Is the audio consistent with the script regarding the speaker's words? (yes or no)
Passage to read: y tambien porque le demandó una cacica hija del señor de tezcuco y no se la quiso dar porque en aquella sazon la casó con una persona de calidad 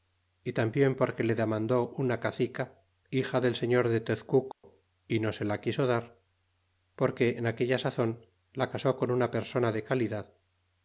yes